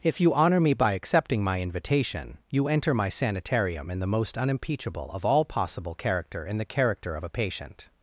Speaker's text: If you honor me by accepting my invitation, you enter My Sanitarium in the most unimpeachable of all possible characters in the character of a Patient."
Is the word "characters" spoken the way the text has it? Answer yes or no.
no